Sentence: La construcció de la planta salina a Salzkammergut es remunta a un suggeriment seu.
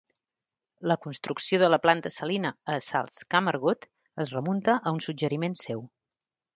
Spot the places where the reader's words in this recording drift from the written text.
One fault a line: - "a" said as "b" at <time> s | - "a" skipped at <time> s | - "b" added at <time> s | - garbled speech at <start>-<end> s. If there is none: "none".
none